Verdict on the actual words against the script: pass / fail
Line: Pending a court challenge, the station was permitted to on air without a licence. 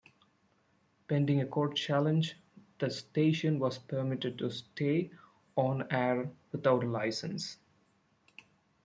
fail